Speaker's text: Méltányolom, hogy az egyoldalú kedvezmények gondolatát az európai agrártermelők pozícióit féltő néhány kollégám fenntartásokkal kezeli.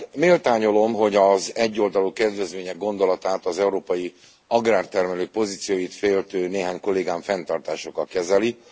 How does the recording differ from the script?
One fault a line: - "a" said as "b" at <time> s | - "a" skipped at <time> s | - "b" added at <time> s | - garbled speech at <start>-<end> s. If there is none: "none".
none